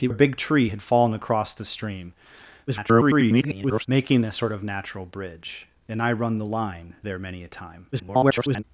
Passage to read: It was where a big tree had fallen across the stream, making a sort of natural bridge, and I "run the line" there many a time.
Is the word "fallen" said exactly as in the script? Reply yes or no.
yes